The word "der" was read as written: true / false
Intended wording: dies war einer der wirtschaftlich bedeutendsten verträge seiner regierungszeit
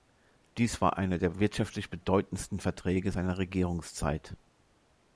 true